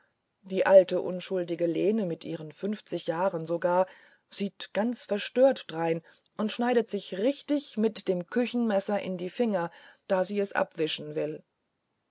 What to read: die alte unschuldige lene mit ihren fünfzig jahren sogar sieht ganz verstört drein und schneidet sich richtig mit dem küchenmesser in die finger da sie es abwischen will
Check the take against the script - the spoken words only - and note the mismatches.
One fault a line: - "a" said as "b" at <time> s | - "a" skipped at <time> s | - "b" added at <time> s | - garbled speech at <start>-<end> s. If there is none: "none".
none